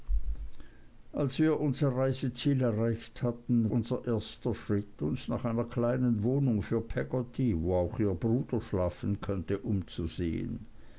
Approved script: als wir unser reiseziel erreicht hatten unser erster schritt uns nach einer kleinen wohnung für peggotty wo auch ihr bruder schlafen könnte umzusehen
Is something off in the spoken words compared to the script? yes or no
no